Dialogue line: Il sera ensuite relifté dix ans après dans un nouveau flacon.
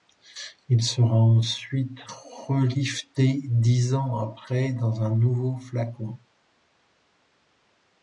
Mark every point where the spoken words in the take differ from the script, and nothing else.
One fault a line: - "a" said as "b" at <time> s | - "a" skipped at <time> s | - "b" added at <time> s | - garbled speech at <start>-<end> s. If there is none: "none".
none